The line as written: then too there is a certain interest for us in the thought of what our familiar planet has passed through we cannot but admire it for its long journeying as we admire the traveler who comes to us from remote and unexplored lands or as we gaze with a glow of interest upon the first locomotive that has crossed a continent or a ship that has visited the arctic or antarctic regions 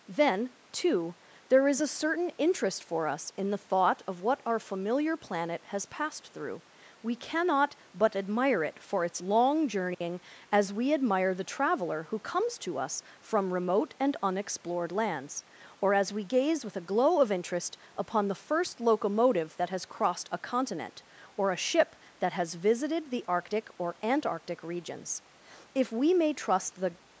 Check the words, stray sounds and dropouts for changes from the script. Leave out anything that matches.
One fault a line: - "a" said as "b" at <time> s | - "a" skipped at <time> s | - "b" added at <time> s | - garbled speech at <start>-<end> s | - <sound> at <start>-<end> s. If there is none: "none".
- dropout at 9.9-10.0 s
- "if we may trust the" added at 25.8 s